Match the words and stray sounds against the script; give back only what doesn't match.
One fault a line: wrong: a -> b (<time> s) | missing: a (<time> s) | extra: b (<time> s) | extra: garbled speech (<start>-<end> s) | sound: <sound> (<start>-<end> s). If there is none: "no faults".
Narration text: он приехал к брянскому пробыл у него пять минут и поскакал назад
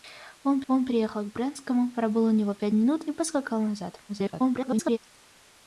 extra: он (0.7 s)
extra: garbled speech (4.1-5.0 s)